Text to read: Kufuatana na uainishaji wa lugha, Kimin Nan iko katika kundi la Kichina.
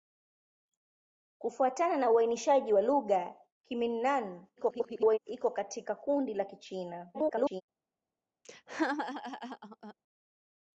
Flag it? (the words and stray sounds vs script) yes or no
yes